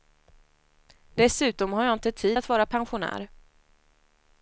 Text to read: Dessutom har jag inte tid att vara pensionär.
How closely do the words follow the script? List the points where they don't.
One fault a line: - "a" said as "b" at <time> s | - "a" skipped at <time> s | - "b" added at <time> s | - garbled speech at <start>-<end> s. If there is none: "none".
none